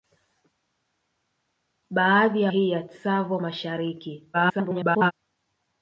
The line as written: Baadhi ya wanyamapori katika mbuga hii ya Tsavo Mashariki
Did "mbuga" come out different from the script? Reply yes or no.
yes